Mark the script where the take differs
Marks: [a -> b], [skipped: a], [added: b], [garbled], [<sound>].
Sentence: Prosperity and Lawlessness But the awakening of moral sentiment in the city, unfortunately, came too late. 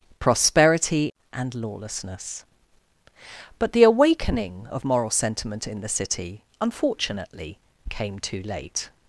Prosperity and Lawlessness But the awakening of moral sentiment in the city, unfortunately, came too late.